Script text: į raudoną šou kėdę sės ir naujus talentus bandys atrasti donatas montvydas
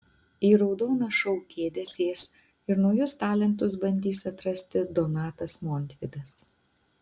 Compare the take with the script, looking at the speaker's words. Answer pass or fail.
pass